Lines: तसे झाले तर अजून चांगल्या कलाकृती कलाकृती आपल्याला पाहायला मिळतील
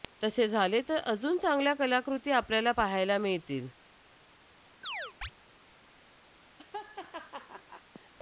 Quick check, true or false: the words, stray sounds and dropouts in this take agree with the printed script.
false